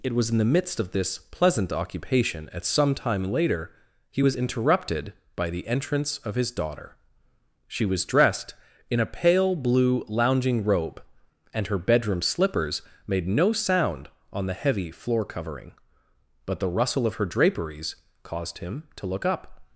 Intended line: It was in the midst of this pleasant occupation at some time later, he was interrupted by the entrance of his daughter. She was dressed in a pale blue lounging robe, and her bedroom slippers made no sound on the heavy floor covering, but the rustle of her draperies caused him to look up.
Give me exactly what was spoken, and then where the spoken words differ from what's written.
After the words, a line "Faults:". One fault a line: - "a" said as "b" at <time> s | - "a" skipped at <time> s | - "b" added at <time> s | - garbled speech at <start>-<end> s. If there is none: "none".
It was in the midst of this pleasant occupation at some time later, he was interrupted by the entrance of his daughter. She was dressed in a pale blue lounging robe, and her bedroom slippers made no sound on the heavy floor covering, but the rustle of her draperies caused him to look up.
Faults:
none